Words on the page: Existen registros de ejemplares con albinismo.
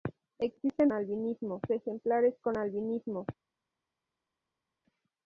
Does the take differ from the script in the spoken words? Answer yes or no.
yes